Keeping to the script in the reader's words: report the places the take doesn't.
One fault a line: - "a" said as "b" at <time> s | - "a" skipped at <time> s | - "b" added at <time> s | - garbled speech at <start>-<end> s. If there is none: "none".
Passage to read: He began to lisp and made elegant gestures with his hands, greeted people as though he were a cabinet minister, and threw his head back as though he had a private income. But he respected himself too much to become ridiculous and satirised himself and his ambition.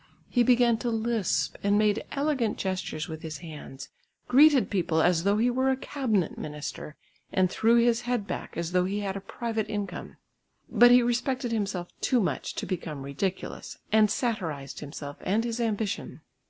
none